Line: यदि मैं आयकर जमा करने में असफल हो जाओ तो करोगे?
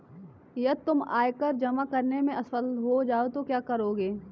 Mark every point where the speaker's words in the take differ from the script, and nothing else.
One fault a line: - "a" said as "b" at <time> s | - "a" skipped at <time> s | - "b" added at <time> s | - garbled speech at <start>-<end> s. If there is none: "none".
- "मैं" said as "तुम" at 0.8 s
- "क्या" added at 3.4 s